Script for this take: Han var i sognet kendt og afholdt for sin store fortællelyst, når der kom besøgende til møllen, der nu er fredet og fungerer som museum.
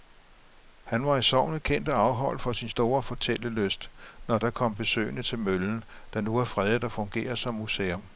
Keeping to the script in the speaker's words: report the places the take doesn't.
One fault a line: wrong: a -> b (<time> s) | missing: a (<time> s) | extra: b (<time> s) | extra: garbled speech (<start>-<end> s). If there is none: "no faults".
no faults